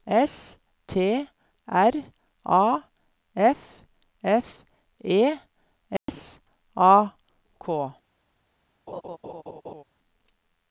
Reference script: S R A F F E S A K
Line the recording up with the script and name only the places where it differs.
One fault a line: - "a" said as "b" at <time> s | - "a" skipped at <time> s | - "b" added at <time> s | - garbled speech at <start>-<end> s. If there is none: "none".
- "T" added at 0.9 s